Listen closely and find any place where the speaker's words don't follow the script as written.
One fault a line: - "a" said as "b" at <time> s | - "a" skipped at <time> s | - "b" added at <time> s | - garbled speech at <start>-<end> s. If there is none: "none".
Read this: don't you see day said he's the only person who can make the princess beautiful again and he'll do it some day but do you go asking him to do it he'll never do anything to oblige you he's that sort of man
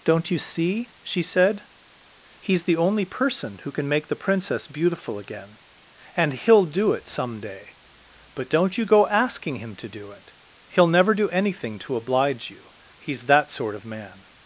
- "day" said as "she" at 1.0 s
- "do" said as "don't" at 8.5 s